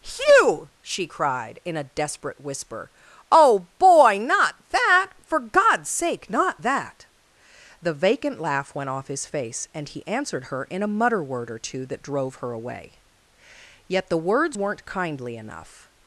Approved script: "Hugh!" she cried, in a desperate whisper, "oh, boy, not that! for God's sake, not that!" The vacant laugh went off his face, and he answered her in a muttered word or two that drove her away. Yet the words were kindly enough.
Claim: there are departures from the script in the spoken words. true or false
true